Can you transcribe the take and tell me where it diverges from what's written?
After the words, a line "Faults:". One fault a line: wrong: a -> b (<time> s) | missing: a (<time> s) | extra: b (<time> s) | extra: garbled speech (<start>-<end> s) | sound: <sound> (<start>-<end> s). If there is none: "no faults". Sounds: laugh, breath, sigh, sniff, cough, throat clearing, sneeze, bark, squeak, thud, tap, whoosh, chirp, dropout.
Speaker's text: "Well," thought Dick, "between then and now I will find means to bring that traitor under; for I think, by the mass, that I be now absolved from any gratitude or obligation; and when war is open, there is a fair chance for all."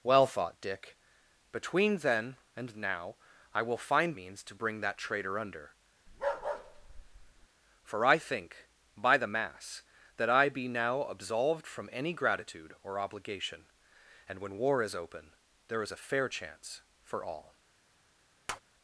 "Well," thought Dick, "between then and now I will find means to bring that traitor under; for I think, by the mass, that I be now absolved from any gratitude or obligation; and when war is open, there is a fair chance for all."
Faults:
sound: bark (6.1-7.5 s)
sound: tap (18.5-18.6 s)